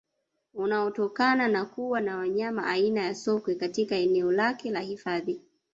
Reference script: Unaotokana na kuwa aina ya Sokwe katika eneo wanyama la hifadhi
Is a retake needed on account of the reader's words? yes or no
yes